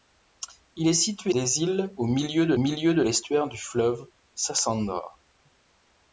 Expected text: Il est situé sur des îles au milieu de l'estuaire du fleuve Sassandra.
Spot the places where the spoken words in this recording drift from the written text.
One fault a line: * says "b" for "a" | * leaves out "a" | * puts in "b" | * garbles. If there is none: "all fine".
* leaves out "sur"
* puts in "milieu de"